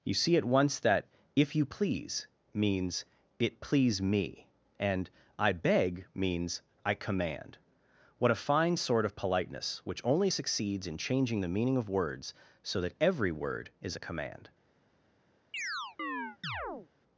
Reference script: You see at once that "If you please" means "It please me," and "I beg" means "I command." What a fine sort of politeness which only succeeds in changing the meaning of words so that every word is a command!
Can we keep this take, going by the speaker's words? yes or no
yes